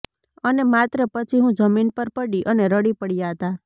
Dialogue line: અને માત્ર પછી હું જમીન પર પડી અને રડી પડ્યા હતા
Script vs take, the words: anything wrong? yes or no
no